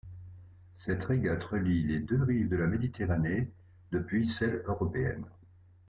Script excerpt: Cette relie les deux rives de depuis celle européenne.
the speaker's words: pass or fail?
fail